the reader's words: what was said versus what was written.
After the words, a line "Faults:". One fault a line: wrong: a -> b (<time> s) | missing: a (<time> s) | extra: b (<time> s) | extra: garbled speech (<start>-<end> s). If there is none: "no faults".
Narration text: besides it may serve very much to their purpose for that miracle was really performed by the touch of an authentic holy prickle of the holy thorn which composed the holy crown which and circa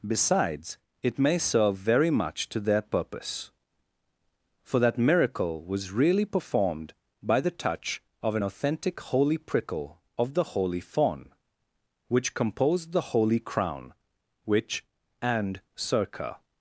besides it may serve very much to their purpose for that miracle was really performed by the touch of an authentic holy prickle of the holy fawn which composed the holy crown which and circa
Faults:
wrong: thorn -> fawn (10.8 s)